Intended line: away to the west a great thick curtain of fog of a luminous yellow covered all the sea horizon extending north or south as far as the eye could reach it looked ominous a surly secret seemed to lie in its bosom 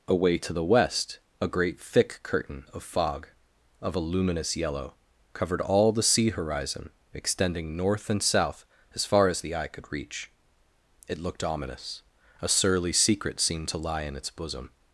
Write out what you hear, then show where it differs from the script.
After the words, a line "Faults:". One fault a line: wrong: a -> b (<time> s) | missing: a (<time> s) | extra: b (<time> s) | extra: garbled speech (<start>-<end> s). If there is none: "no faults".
away to the west a great thick curtain of fog of a luminous yellow covered all the sea horizon extending north and south as far as the eye could reach it looked ominous a surly secret seemed to lie in its bosom
Faults:
wrong: or -> and (8.1 s)